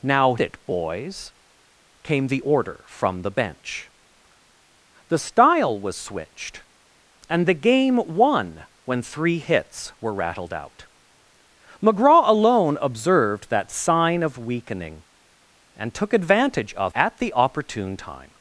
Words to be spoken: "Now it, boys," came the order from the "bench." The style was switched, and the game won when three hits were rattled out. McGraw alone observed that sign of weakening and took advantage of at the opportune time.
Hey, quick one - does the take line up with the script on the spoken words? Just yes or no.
yes